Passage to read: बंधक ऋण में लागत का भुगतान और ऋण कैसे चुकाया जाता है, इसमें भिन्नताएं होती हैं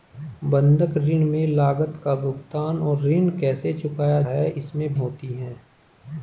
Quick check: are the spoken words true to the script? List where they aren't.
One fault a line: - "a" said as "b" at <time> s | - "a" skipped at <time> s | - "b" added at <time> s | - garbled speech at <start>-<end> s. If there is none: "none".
- "जाता" skipped at 4.2 s
- "भिन्नताएं" skipped at 4.9 s